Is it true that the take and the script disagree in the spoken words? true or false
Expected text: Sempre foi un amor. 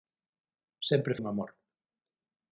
true